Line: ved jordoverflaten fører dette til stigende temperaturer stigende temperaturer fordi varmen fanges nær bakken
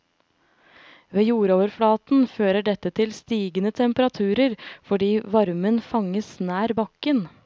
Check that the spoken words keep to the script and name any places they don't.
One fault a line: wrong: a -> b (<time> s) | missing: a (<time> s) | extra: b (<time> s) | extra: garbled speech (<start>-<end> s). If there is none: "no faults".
missing: stigende temperaturer (4.5 s)